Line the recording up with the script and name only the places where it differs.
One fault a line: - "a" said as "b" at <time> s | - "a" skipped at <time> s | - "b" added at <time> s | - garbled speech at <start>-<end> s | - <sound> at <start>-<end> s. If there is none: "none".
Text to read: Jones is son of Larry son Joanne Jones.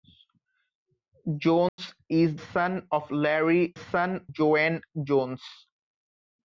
- dropout at 1.7-1.8 s